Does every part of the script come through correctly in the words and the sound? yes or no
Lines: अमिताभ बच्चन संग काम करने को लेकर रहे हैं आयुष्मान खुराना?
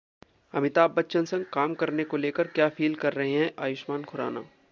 no